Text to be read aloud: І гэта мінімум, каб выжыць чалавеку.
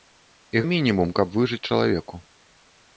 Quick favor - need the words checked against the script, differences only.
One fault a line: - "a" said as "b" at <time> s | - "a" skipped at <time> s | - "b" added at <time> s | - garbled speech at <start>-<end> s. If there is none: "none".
- "гэта" skipped at 0.6 s